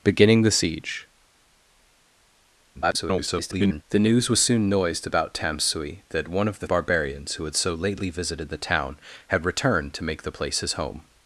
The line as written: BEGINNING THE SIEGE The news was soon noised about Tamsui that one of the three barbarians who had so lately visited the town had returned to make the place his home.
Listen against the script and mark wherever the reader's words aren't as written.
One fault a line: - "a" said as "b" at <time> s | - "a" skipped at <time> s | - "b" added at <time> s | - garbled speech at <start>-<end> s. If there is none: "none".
- garbled speech at 2.7-3.8 s
- "three" skipped at 6.7 s